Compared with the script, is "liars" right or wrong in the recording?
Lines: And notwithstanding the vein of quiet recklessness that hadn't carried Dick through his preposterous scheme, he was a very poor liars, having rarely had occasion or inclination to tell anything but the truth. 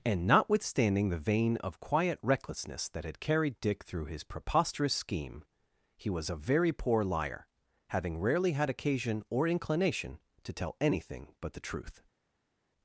wrong